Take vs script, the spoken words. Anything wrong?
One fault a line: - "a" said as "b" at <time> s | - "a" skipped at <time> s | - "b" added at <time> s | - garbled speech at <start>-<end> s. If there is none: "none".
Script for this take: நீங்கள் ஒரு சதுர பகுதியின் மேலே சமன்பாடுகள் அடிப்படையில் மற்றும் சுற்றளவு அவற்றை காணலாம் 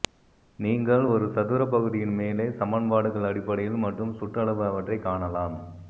none